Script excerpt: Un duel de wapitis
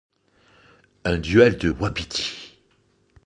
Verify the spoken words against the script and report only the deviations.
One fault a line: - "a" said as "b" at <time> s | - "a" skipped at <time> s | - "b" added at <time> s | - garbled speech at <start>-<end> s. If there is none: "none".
none